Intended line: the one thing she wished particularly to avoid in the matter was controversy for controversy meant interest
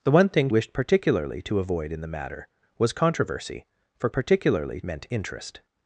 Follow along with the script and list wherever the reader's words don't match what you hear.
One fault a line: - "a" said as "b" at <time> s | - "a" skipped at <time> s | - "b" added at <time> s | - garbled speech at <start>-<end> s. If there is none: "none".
- "she" skipped at 0.5 s
- "controversy" said as "particularly" at 4.1 s